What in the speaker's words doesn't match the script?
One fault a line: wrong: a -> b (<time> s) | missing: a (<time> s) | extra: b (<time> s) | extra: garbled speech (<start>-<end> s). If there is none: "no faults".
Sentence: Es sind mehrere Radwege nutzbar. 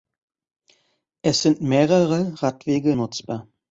no faults